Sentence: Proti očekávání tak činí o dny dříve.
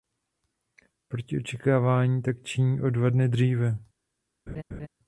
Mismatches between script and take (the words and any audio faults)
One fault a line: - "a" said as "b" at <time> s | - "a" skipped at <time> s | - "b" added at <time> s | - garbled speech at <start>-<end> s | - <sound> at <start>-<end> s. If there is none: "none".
- "dva" added at 2.9 s
- laugh at 4.5-4.9 s